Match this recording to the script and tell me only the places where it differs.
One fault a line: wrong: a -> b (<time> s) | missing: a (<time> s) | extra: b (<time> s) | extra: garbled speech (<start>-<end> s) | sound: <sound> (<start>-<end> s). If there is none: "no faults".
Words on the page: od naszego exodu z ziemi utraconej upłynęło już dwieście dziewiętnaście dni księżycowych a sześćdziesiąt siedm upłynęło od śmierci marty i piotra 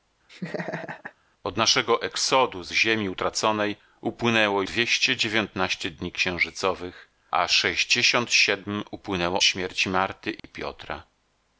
sound: laugh (0.3-1.1 s)
missing: już (4.6 s)
missing: od (9.4 s)
sound: dropout (10.4-10.4 s)